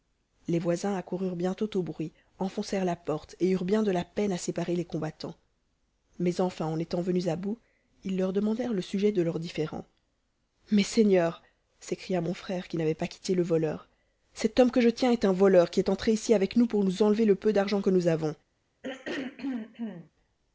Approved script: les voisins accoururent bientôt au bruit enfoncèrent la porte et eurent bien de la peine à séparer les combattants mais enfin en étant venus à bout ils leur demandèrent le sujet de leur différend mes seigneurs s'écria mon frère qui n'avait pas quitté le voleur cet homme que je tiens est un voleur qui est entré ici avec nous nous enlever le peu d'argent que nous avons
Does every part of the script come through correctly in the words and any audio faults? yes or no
no